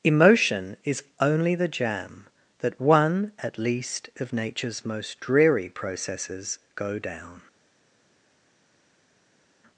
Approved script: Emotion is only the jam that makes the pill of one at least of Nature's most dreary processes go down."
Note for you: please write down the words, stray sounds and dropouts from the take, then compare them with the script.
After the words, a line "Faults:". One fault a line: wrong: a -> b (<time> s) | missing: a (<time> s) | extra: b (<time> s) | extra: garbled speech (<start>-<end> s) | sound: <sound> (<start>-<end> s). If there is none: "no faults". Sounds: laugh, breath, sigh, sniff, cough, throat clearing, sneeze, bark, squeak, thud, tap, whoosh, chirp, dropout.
Emotion is only the jam that one at least of Nature's most dreary processes go down."
Faults:
missing: makes the pill of (2.8 s)